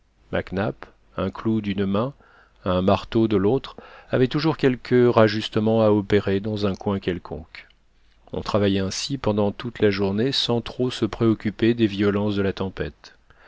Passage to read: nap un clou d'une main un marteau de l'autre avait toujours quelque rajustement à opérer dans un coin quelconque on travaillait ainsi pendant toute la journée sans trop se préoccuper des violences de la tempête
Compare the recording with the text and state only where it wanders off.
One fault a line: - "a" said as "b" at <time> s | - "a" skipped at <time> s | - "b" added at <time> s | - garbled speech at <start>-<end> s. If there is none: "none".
none